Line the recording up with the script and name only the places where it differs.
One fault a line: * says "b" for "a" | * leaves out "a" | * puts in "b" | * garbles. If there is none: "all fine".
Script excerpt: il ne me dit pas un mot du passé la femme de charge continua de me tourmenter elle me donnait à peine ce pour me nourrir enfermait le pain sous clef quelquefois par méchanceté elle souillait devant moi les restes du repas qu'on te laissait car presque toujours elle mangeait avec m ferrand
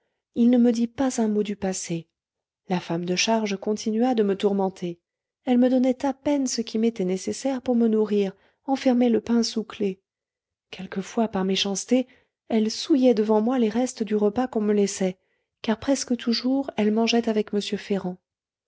* puts in "qui m'était nécessaire"
* says "me" for "te"